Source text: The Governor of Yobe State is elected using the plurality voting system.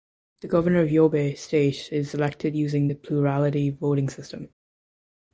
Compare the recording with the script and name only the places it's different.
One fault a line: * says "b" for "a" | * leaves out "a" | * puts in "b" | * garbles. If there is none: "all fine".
all fine